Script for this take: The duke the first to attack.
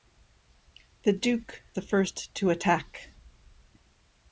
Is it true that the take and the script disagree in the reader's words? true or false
false